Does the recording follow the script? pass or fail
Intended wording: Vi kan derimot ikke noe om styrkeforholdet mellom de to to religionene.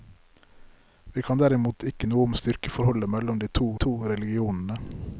pass